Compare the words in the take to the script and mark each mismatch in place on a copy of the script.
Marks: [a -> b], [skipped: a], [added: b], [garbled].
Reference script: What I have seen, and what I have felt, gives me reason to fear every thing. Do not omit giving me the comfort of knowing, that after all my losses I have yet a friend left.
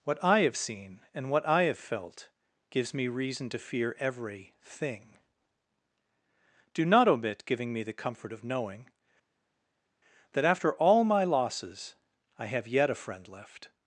What I have seen, and what I have felt, gives me reason to fear every thing. Do not omit giving me the comfort of knowing, that after all my losses I have yet a friend left.